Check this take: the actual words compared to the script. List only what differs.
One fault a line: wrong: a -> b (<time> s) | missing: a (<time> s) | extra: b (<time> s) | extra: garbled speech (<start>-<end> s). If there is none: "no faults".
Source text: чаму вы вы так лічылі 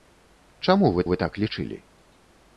no faults